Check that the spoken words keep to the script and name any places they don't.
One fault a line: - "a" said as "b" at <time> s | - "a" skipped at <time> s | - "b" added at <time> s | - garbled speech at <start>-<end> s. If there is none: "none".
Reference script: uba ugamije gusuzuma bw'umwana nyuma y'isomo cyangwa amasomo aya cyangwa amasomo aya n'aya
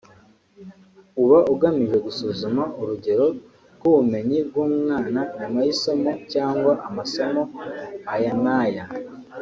- "urugero rw'ubumenyi" added at 2.8 s
- "cyangwa amasomo aya" skipped at 8.3 s